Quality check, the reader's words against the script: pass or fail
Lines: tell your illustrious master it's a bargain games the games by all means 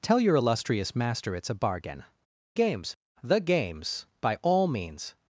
pass